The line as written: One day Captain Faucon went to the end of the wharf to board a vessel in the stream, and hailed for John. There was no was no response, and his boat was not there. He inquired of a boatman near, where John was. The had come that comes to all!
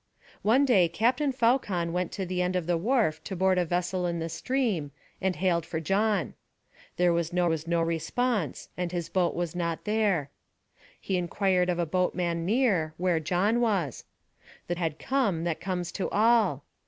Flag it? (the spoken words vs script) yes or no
no